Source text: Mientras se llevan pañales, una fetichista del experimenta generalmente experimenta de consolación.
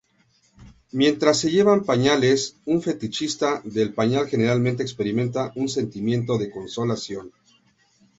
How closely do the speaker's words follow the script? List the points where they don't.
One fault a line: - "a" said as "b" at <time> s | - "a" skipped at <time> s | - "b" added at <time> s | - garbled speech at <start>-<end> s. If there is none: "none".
- "una" said as "un" at 2.6 s
- "experimenta" said as "pañal" at 3.9 s
- "un sentimiento" added at 5.6 s